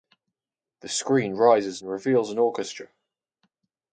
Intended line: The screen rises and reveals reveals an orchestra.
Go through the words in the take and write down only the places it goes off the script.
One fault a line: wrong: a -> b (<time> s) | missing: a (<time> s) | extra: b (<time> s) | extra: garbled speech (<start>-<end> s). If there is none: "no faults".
missing: reveals (2.3 s)